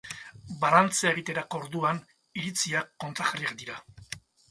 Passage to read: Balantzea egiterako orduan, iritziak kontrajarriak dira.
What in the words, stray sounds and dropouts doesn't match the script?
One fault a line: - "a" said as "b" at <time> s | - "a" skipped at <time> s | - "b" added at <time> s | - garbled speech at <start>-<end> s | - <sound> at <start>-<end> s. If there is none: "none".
none